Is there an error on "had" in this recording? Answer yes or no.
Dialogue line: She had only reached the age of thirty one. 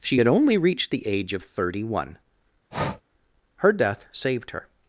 no